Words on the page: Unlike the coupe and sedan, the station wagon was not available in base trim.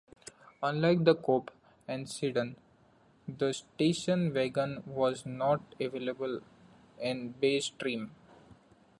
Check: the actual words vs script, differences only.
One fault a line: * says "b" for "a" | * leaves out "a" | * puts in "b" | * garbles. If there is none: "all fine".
all fine